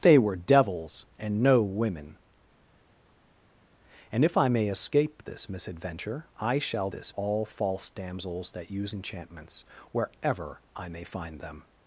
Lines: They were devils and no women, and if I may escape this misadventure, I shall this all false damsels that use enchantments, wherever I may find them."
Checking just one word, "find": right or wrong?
right